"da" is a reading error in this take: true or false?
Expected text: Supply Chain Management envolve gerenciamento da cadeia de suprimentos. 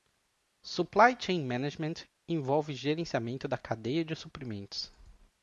false